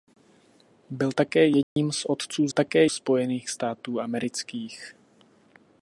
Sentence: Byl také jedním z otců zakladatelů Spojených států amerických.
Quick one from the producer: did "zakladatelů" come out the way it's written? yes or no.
no